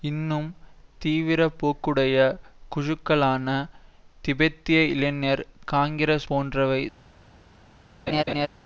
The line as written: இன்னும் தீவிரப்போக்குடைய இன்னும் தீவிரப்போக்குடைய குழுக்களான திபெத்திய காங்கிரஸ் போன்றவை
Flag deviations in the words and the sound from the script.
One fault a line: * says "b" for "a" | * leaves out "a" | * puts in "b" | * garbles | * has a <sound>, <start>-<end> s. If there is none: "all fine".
* leaves out "இன்னும் தீவிரப்போக்குடைய"
* puts in "இளைஞர்"
* has a laugh, 8.1-8.5 s